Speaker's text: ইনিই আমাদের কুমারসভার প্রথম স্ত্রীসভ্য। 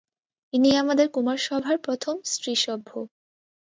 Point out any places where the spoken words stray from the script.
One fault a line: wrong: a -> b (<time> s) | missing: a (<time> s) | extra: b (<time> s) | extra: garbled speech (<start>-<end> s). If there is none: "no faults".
no faults